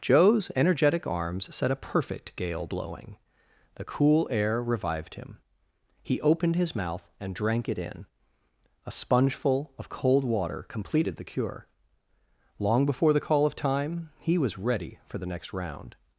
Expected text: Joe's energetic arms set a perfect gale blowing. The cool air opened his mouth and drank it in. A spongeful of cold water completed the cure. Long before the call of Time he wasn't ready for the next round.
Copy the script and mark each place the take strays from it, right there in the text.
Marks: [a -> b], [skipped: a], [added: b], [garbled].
Joe's energetic arms set a perfect gale blowing. The cool air [added: revived him He] opened his mouth and drank it in. A spongeful of cold water completed the cure. Long before the call of Time he [wasn't -> was] ready for the next round.